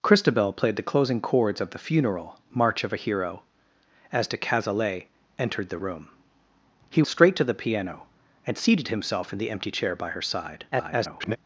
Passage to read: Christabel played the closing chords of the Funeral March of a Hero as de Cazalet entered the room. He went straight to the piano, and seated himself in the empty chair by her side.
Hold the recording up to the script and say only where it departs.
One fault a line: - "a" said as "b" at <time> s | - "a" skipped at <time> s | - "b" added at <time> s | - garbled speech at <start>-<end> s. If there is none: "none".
- "went" skipped at 7.0 s
- garbled speech at 10.7-11.4 s